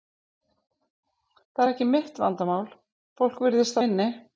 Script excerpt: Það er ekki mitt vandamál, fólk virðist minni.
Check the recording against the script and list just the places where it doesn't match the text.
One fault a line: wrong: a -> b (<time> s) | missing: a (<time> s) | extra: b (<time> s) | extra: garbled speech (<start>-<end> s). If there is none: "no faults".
no faults